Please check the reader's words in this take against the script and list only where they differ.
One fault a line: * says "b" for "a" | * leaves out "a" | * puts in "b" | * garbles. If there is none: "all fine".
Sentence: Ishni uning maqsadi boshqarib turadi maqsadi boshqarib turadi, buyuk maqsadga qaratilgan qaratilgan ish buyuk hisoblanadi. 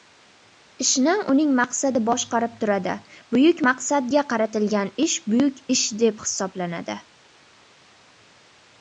* leaves out "maqsadi boshqarib turadi"
* says "ish buyuk" for "qaratilgan"
* says "deb" for "buyuk"